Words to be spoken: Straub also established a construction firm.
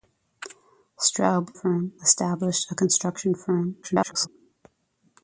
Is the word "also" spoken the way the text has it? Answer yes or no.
no